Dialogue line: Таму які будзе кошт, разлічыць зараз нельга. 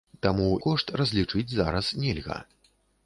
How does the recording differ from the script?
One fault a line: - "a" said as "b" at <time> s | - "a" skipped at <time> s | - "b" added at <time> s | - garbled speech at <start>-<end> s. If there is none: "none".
- "які будзе" skipped at 0.5 s